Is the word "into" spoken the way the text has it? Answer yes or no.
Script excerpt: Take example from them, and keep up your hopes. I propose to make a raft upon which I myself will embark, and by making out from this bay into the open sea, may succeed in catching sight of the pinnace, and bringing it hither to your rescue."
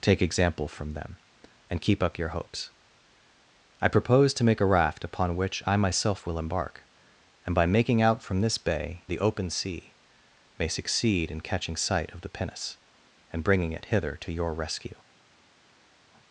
no